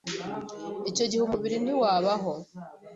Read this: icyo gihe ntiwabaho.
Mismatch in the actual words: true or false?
true